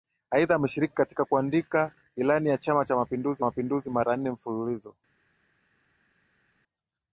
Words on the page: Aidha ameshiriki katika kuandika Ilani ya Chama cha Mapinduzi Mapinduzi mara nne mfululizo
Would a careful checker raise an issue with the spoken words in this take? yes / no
no